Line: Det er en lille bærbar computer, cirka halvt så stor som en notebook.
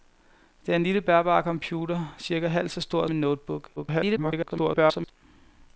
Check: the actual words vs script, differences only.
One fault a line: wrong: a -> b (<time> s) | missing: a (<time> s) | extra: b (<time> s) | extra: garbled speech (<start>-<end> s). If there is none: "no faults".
missing: som (3.1 s)
extra: garbled speech (3.8-5.1 s)